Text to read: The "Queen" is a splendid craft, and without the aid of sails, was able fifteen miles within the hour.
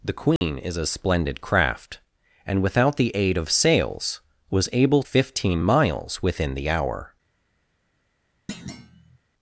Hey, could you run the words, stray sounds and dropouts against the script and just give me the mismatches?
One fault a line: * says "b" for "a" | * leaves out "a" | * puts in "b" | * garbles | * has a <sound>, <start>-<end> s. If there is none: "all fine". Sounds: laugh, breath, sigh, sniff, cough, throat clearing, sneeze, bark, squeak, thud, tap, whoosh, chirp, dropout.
* has a dropout, 0.4-0.4 s
* has a thud, 8.5-9.2 s